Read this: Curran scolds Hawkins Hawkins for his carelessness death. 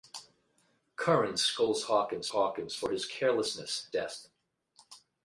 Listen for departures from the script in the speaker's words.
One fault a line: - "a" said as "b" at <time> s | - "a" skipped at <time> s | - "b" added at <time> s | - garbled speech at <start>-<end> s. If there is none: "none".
none